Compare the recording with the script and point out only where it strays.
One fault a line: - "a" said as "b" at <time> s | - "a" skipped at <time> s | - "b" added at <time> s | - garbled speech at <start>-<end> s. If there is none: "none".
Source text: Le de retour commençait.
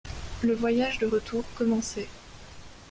- "voyage" added at 0.5 s